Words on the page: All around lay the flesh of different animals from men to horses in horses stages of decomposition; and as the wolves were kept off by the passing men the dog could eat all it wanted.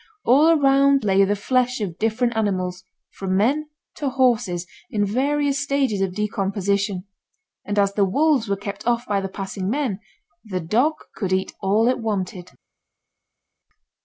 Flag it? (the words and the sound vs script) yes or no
yes